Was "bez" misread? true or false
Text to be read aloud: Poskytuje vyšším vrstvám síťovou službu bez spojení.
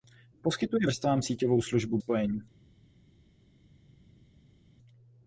true